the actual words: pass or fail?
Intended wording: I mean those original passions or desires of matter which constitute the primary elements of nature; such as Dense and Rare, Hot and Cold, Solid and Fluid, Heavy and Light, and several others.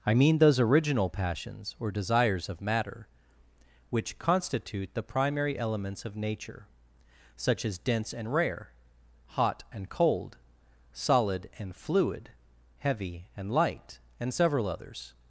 pass